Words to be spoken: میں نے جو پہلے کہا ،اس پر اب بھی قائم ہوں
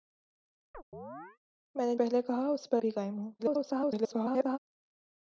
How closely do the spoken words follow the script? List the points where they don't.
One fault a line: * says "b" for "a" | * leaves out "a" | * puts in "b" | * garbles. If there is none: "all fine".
* leaves out "جو"
* leaves out "اب"
* garbles